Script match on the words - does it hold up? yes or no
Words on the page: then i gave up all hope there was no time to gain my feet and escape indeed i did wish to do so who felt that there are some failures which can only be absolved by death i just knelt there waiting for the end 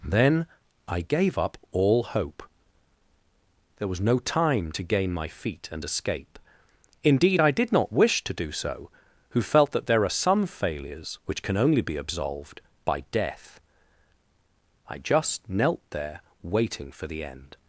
no